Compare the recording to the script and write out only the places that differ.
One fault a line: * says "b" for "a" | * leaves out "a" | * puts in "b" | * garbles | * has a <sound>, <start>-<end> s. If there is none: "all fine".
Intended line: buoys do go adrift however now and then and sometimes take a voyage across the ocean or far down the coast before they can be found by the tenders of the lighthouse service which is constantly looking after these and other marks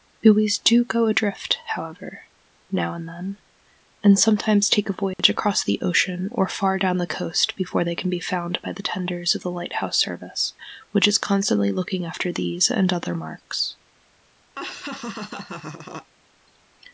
* has a dropout, 5.1-5.2 s
* has a laugh, 14.6-16.1 s